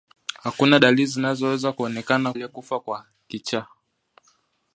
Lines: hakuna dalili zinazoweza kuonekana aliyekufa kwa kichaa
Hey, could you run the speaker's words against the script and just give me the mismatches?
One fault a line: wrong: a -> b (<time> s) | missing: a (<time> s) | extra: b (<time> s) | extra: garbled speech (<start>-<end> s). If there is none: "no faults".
no faults